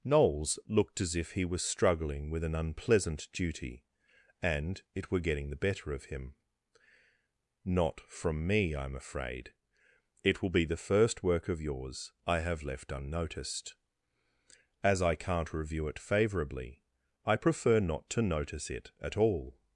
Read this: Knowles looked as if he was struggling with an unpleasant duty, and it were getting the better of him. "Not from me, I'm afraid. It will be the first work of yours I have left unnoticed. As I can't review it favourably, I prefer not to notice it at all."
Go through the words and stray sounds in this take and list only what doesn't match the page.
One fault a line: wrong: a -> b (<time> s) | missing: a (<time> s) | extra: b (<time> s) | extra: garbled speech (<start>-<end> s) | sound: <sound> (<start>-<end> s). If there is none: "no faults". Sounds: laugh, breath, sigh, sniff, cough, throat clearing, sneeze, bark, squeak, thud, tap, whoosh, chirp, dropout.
no faults